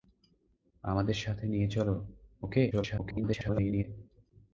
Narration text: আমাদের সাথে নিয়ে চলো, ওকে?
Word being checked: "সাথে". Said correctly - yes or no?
yes